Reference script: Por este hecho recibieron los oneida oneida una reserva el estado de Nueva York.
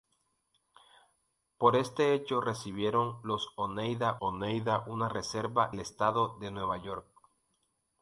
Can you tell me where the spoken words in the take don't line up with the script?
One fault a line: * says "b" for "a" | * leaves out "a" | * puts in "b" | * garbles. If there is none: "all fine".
all fine